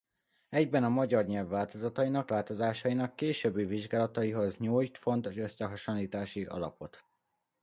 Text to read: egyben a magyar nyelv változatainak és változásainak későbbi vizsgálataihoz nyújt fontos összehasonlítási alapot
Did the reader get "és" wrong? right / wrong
wrong